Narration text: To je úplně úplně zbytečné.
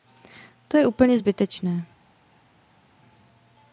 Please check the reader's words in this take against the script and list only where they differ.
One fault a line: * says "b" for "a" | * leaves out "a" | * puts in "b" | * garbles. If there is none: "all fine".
* leaves out "úplně"